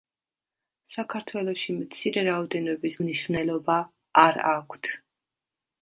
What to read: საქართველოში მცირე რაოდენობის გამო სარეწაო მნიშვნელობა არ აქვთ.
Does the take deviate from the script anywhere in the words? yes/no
yes